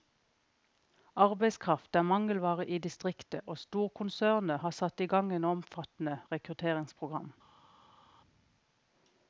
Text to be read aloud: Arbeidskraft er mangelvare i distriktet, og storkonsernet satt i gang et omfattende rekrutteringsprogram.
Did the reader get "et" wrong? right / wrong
right